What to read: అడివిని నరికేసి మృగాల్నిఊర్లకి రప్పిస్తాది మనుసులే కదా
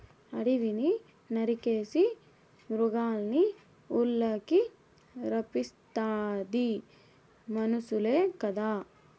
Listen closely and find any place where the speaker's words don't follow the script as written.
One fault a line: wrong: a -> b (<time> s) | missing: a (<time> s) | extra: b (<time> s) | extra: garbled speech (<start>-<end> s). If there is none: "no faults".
no faults